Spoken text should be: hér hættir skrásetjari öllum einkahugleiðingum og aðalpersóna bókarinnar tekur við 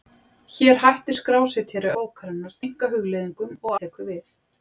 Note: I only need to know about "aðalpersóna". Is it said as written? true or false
false